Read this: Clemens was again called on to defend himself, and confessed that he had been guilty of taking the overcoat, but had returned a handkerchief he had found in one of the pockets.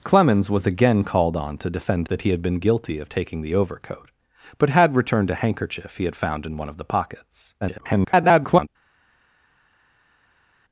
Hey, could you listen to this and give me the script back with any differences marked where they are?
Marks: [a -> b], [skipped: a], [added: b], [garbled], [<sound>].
Clemens was again called on to defend [skipped: himself, and confessed] that he had been guilty of taking the overcoat, but had returned a handkerchief he had found in one of the pockets. [garbled]